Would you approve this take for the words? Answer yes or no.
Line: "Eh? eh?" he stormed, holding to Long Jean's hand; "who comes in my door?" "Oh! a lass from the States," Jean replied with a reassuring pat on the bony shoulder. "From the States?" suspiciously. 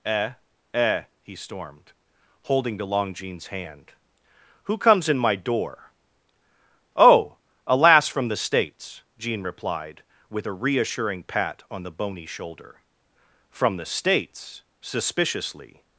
yes